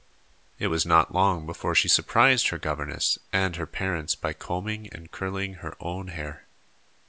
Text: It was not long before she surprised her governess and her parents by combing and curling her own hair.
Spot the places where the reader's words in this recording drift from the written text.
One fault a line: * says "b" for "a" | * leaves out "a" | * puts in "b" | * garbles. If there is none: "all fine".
all fine